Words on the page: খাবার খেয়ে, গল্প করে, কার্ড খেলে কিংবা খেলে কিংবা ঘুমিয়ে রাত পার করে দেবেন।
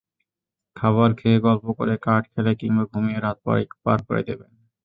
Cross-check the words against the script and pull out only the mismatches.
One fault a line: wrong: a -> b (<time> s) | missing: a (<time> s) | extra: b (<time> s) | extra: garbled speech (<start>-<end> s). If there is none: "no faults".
missing: খেলে কিংবা (2.8 s)